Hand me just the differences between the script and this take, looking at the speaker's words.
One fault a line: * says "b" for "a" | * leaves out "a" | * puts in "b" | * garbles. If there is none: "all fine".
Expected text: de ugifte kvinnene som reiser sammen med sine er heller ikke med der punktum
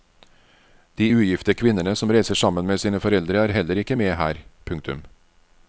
* puts in "foreldre"
* says "her" for "der"